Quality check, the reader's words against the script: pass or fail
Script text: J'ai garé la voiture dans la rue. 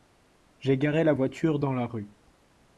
pass